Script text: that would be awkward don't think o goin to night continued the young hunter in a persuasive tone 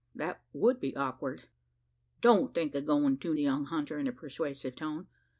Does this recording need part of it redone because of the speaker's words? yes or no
yes